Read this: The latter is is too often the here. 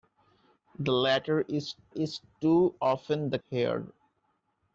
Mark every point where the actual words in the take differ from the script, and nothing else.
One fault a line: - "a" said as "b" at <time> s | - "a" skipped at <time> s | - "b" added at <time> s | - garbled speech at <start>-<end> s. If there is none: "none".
none